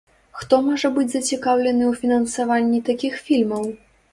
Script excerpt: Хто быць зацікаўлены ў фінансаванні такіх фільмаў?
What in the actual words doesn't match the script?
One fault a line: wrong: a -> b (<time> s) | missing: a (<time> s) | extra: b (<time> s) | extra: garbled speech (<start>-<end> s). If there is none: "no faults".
extra: можа (0.7 s)